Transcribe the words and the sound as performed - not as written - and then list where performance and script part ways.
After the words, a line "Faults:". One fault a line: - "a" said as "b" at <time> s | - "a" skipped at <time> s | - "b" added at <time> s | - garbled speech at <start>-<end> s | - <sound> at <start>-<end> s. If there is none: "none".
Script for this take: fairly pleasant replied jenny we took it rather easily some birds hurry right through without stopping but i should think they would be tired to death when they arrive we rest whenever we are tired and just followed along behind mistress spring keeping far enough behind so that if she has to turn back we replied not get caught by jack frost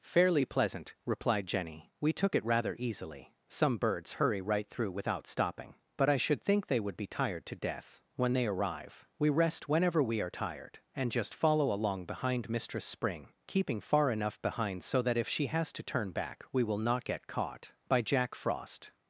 fairly pleasant replied jenny we took it rather easily some birds hurry right through without stopping but i should think they would be tired to death when they arrive we rest whenever we are tired and just follow along behind mistress spring keeping far enough behind so that if she has to turn back we will not get caught by jack frost
Faults:
- "followed" said as "follow" at 11.3 s
- "replied" said as "will" at 16.6 s